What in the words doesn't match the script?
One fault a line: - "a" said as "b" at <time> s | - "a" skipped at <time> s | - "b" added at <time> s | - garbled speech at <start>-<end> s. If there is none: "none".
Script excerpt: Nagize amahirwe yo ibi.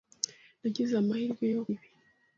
none